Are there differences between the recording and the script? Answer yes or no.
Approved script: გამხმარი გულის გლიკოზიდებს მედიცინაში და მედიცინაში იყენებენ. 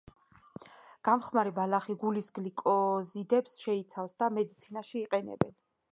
yes